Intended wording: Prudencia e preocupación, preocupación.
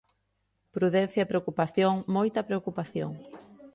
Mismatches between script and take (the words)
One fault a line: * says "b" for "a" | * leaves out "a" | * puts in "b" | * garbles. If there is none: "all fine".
* puts in "moita"